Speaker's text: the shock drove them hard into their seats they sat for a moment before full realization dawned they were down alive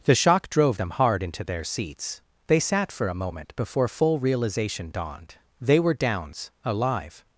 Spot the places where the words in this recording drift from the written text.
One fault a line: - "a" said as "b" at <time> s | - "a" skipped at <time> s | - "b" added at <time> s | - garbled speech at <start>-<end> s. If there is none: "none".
- "down" said as "downs" at 5.9 s